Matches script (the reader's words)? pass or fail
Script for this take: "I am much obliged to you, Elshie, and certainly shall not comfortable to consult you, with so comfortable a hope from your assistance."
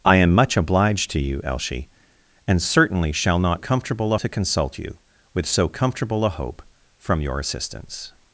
pass